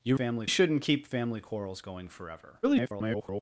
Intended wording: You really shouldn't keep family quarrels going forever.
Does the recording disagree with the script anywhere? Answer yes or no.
yes